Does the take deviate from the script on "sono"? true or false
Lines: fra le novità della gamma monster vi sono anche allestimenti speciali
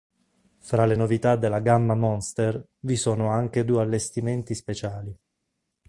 false